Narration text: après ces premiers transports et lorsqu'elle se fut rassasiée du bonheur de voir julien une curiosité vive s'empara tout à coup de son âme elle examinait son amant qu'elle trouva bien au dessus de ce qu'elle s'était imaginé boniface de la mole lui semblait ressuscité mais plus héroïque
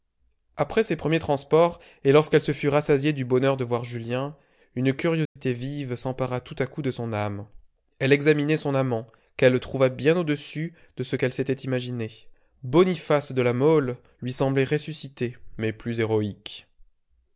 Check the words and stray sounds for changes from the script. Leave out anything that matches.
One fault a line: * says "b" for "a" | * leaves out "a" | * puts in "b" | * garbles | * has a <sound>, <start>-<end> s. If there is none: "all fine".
* has a dropout, 5.3-5.4 s